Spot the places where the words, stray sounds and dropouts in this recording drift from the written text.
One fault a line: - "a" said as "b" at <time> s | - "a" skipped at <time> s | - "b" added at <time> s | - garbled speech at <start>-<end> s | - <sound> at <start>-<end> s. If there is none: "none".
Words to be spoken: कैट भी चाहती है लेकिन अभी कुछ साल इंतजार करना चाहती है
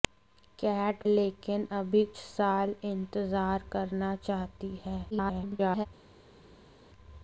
- "भी चाहती है" skipped at 1.0 s
- "कुछ" skipped at 2.0 s
- garbled speech at 5.1-5.9 s